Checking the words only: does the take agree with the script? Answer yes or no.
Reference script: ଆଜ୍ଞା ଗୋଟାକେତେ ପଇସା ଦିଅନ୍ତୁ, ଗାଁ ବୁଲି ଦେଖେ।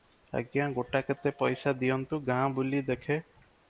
yes